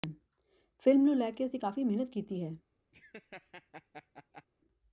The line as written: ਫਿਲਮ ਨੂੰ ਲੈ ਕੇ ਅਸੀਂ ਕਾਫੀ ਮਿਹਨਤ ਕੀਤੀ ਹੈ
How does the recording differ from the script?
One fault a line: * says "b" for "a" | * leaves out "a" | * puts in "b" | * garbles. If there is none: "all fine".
all fine